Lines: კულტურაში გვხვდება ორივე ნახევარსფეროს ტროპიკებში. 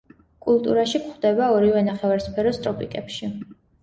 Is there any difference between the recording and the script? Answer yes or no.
no